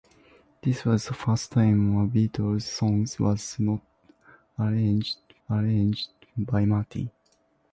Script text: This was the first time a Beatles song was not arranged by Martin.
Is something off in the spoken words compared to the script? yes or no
yes